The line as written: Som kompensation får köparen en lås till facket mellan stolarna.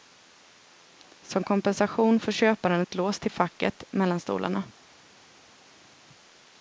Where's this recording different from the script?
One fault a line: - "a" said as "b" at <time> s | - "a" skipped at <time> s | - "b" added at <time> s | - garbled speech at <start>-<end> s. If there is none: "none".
- "en" said as "ett" at 2.8 s